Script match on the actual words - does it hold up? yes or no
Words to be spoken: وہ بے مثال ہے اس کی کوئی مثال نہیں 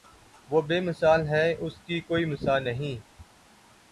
yes